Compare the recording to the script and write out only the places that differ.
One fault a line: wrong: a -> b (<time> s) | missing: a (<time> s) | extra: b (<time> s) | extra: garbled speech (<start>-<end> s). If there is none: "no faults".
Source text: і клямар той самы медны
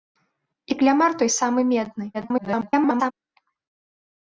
extra: garbled speech (2.1-3.1 s)